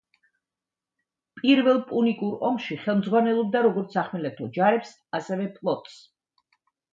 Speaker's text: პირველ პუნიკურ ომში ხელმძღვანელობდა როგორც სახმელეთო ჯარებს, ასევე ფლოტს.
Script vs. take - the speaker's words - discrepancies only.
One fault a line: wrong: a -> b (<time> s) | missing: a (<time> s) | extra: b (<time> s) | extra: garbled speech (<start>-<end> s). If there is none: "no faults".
no faults